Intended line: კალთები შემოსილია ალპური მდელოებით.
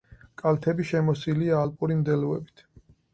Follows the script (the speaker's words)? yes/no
yes